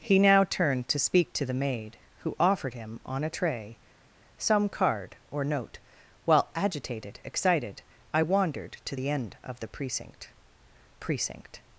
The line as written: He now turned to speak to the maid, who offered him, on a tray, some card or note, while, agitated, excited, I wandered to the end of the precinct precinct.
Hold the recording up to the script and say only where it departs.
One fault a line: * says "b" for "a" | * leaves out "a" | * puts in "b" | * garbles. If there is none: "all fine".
all fine